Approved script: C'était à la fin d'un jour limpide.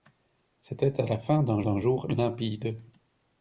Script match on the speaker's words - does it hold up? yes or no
no